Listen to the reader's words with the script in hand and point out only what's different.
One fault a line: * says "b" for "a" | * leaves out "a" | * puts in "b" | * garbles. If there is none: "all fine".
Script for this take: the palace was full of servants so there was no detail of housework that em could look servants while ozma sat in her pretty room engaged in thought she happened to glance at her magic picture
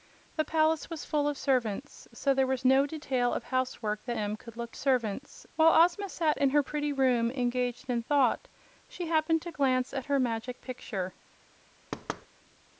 all fine